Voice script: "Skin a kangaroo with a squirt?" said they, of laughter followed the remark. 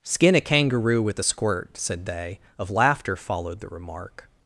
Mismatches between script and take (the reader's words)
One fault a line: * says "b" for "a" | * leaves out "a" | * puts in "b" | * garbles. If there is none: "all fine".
all fine